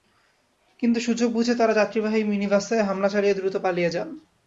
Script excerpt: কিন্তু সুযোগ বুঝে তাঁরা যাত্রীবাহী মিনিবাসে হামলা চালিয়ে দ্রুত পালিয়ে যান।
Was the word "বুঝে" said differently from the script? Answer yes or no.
no